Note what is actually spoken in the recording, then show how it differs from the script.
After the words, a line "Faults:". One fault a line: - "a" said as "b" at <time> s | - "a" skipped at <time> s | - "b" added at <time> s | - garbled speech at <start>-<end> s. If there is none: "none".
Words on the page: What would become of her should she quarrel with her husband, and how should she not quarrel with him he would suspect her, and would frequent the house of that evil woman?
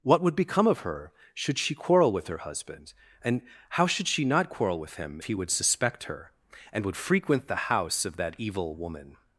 What would become of her should she quarrel with her husband, and how should she not quarrel with him he would suspect her, and would frequent the house of that evil woman?
Faults:
none